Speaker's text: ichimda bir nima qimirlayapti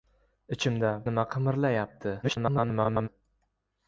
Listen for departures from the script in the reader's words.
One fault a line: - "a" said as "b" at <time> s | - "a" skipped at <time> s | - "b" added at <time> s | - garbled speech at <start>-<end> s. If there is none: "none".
- "bir" skipped at 0.9 s
- garbled speech at 2.2-3.1 s